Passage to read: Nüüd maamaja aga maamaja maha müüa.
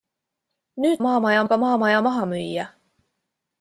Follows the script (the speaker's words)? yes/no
yes